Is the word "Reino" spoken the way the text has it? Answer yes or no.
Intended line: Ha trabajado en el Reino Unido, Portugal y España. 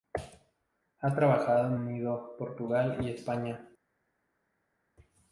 no